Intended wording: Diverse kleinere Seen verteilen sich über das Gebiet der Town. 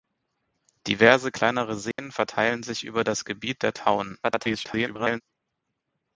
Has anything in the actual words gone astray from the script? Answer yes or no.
yes